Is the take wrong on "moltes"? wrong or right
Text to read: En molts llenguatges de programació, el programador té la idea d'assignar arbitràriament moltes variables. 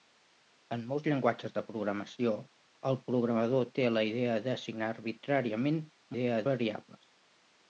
wrong